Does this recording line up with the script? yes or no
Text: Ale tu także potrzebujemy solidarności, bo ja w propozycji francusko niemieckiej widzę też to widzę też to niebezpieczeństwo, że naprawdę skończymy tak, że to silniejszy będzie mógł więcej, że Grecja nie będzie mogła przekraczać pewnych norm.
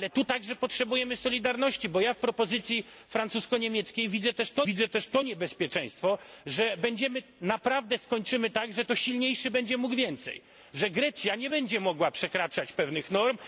yes